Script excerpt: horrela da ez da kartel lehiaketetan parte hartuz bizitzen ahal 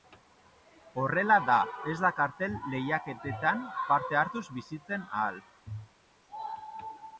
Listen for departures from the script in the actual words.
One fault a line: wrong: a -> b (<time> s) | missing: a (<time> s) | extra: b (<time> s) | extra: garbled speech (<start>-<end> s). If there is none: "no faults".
no faults